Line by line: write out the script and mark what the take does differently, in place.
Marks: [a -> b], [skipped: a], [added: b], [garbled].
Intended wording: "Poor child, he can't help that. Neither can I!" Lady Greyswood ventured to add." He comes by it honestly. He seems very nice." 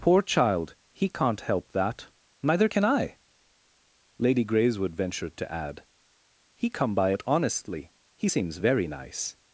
"Poor child, he can't help that. Neither can I!" Lady Greyswood ventured to add." He [comes -> come] by it honestly. He seems very nice."